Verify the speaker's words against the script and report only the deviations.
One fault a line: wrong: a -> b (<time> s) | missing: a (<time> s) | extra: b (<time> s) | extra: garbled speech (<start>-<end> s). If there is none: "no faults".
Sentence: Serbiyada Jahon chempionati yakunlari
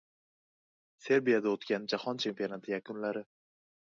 extra: o‘tgan (1.6 s)